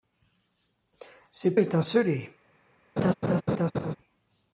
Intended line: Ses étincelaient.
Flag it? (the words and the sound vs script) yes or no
yes